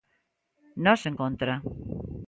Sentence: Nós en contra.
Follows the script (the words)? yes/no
yes